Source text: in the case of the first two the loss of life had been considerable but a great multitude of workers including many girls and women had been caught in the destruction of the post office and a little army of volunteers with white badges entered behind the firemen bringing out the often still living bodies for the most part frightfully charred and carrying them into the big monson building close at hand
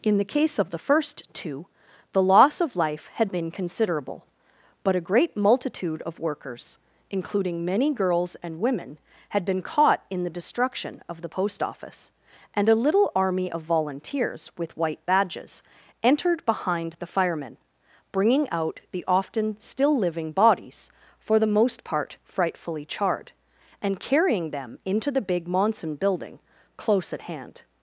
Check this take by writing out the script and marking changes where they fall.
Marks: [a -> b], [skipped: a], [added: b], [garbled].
in the case of the first two the loss of life had been considerable but a great multitude of workers including many girls and women had been caught in the destruction of the post office and a little army of volunteers with white badges entered behind the firemen bringing out the often still living bodies for the most part frightfully charred and carrying them into the big monson building close at hand